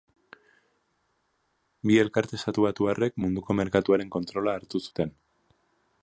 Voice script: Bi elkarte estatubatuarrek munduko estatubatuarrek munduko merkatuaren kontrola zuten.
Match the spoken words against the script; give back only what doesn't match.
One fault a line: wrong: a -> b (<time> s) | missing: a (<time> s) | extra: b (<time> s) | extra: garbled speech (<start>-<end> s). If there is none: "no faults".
missing: estatubatuarrek munduko (3.6 s)
extra: hartu (4.6 s)